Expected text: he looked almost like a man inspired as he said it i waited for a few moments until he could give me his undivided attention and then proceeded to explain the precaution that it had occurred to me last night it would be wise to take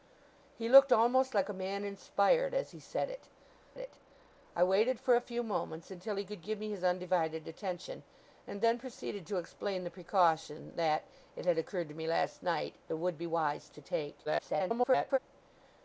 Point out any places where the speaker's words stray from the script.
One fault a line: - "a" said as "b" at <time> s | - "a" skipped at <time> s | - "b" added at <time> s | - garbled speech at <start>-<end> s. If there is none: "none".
- "it" added at 3.8 s
- garbled speech at 14.2-15.2 s